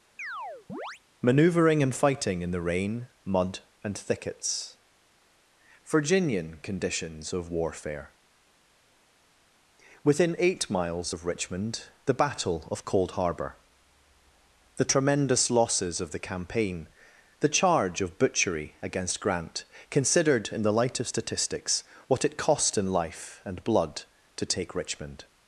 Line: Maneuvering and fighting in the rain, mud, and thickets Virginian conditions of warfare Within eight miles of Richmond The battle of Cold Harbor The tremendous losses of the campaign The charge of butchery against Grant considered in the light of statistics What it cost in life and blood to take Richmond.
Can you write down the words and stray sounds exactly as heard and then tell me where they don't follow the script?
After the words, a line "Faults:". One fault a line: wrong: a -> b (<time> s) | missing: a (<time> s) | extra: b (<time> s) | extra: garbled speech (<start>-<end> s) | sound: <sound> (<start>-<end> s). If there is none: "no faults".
Maneuvering and fighting in the rain, mud, and thickets Virginian conditions of warfare Within eight miles of Richmond The battle of Cold Harbor The tremendous losses of the campaign The charge of butchery against Grant considered in the light of statistics What it cost in life and blood to take Richmond.
Faults:
sound: chirp (0.2-1.0 s)